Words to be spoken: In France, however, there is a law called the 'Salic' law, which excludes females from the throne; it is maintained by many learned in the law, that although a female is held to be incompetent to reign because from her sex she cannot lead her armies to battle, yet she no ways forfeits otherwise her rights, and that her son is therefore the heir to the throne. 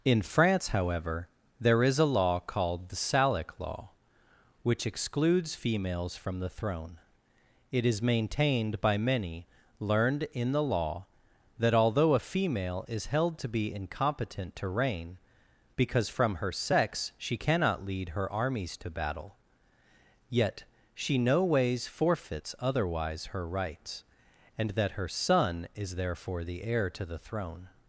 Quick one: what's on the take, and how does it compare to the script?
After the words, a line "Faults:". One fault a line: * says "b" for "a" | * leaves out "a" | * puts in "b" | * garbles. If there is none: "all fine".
In France, however, there is a law called the 'Salic' law, which excludes females from the throne; it is maintained by many learned in the law, that although a female is held to be incompetent to reign because from her sex she cannot lead her armies to battle, yet she no ways forfeits otherwise her rights, and that her son is therefore the heir to the throne.
Faults:
all fine